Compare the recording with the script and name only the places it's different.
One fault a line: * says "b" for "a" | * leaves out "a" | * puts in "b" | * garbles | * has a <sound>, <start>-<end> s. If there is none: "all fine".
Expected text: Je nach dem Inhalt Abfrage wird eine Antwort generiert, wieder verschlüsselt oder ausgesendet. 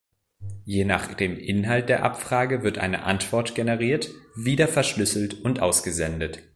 * puts in "der"
* says "und" for "oder"